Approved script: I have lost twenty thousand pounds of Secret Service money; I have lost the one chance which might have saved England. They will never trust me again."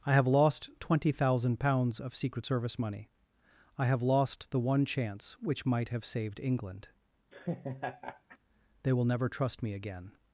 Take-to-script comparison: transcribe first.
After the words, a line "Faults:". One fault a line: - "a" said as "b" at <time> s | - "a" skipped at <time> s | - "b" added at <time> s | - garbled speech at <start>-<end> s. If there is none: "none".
I have lost twenty thousand pounds of Secret Service money; I have lost the one chance which might have saved England. They will never trust me again."
Faults:
none